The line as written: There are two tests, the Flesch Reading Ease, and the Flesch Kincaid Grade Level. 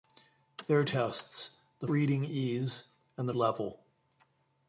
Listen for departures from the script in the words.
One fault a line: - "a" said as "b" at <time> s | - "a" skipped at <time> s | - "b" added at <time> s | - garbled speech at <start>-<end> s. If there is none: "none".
- "two" skipped at 0.8 s
- "Flesch" skipped at 1.9 s
- "Flesch Kincaid Grade" skipped at 3.3 s